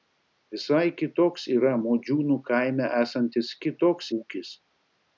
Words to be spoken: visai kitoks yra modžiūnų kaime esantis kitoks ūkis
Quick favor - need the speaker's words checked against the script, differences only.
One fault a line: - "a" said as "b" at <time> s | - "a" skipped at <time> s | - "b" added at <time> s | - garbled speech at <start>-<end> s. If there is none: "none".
none